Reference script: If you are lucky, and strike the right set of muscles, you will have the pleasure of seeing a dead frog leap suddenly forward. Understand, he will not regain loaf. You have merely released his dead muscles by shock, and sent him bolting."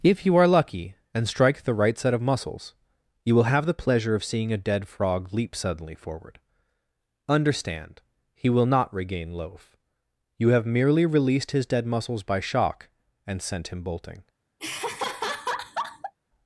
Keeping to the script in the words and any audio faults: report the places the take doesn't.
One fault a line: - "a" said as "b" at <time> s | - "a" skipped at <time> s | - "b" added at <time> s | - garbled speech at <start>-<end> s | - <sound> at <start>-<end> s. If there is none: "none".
- laugh at 14.6-16.1 s